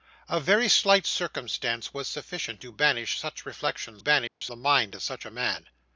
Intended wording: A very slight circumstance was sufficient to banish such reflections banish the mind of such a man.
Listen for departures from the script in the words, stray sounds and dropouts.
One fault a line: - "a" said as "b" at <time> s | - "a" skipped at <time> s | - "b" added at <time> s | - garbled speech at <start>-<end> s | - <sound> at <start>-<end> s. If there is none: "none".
- dropout at 4.3-4.4 s